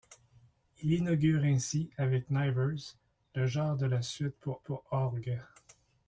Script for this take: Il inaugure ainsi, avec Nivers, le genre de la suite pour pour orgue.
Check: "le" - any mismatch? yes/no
no